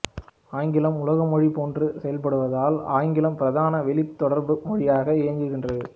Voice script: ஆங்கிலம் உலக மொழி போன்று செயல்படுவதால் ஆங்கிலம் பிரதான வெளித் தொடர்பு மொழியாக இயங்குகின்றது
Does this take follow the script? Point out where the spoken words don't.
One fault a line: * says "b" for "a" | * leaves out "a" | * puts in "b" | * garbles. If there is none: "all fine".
all fine